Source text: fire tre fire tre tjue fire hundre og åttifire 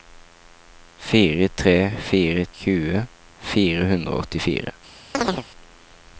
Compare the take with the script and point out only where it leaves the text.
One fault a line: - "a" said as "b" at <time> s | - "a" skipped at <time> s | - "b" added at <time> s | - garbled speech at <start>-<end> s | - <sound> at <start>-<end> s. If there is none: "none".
- "tre" skipped at 2.5 s
- chirp at 5.1-5.5 s